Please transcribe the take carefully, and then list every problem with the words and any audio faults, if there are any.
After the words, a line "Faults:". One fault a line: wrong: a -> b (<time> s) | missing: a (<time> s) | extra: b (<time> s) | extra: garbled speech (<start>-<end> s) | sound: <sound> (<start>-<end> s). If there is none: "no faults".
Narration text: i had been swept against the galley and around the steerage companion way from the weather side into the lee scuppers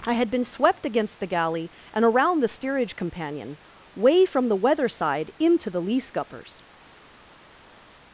i had been swept against the galley and around the steerage companion way from the weather side into the lee scuppers
Faults:
no faults